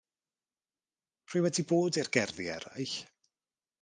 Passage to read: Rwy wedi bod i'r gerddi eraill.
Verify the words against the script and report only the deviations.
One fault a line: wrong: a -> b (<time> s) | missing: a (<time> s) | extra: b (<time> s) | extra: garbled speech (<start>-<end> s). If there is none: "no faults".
no faults